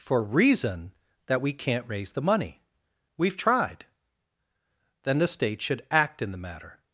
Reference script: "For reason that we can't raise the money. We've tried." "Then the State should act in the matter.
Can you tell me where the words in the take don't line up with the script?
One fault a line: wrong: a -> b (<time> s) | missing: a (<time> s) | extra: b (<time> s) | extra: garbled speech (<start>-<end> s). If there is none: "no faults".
no faults